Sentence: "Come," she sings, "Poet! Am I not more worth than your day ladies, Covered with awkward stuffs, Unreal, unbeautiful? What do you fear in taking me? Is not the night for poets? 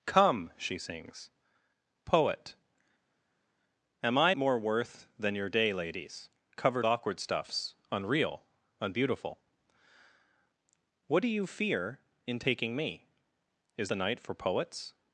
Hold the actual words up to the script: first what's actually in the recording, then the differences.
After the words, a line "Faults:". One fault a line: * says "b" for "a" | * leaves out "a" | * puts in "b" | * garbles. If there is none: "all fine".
"Come," she sings, "Poet! Am I more worth than your day ladies, Covered awkward stuffs, Unreal, unbeautiful? What do you fear in taking me? Is the night for poets?
Faults:
* leaves out "not"
* leaves out "with"
* leaves out "not"